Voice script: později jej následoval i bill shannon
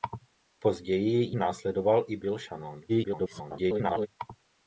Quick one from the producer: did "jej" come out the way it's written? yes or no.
no